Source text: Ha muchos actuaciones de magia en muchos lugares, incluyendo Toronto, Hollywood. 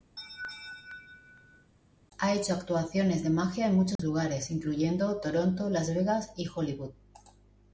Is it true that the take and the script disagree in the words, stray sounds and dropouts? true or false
true